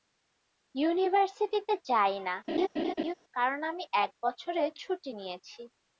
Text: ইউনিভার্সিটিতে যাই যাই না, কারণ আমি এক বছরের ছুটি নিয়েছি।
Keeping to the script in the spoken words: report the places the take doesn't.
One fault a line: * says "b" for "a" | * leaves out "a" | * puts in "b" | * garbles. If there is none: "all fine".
* leaves out "যাই"